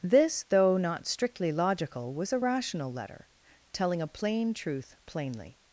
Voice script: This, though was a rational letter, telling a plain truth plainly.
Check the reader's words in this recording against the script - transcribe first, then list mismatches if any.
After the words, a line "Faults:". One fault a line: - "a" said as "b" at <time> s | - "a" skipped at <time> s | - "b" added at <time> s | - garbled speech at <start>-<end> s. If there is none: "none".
This, though not strictly logical, was a rational letter, telling a plain truth plainly.
Faults:
- "not strictly logical" added at 0.8 s